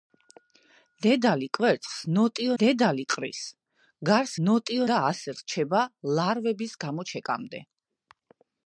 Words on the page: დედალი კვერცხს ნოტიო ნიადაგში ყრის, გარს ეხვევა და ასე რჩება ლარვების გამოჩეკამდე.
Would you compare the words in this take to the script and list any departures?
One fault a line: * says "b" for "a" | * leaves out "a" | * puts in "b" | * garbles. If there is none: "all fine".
* says "დედალი" for "ნიადაგში"
* says "ნოტიო" for "ეხვევა"